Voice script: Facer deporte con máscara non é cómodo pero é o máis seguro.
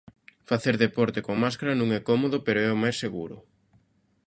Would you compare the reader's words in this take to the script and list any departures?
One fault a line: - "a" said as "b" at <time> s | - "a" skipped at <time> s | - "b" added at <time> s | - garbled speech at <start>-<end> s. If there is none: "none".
none